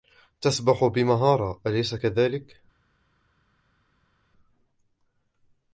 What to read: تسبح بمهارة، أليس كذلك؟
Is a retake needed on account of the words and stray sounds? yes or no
no